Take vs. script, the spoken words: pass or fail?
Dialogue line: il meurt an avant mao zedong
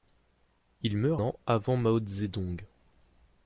pass